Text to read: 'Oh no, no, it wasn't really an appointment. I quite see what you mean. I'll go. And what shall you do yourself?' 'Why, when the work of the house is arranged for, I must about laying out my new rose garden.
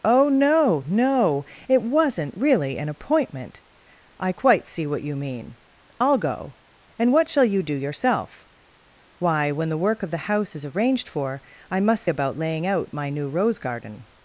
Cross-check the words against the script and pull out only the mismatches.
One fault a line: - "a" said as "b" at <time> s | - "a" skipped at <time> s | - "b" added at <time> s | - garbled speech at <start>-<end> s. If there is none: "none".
none